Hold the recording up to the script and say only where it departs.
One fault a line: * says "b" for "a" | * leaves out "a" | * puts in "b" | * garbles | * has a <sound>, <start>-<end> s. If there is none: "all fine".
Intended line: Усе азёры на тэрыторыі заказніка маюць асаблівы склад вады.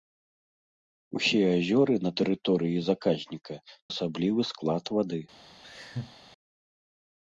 * leaves out "маюць"
* has a laugh, 5.6-6.1 s